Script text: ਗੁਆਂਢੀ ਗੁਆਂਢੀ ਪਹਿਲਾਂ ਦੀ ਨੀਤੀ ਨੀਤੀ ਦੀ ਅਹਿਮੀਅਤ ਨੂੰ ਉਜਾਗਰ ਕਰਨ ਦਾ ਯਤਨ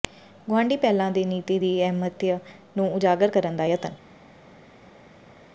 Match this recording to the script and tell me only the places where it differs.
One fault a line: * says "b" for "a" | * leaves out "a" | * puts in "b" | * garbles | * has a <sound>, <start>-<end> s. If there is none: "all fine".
* leaves out "ਗੁਆਂਢੀ"
* leaves out "ਨੀਤੀ"